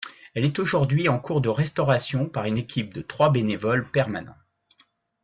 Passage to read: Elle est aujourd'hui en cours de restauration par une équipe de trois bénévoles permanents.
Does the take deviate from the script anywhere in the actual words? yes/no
no